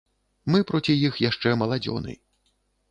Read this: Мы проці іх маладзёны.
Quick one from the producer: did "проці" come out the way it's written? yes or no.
yes